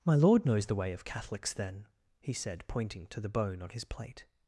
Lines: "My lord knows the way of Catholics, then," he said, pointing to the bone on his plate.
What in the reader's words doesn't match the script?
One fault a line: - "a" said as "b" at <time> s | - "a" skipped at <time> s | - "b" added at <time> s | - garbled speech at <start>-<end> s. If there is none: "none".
none